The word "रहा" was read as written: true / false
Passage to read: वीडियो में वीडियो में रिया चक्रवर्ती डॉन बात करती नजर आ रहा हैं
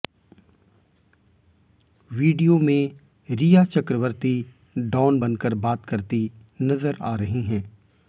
false